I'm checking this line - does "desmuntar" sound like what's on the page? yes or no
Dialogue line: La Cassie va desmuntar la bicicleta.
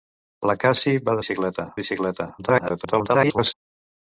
no